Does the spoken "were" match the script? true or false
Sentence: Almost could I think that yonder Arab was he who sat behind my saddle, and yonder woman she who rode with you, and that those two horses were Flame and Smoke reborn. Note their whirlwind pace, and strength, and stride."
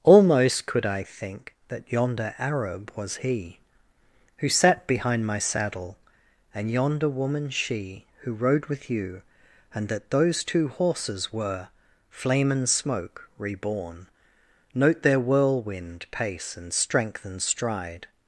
true